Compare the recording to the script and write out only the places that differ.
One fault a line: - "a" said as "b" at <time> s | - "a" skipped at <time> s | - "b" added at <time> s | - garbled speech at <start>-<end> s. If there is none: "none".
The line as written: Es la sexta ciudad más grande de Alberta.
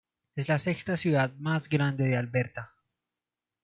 none